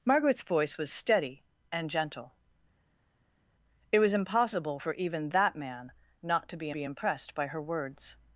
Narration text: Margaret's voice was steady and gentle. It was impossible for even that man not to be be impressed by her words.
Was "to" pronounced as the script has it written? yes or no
yes